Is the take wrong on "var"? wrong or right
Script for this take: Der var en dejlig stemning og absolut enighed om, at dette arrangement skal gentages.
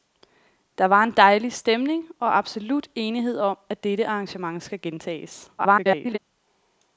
right